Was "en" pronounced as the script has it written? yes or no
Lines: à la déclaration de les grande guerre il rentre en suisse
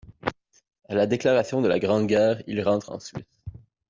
yes